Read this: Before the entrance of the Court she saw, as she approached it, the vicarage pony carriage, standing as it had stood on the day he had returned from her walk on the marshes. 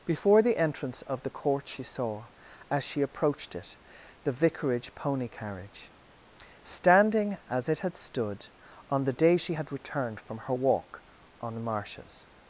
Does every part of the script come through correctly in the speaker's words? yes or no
no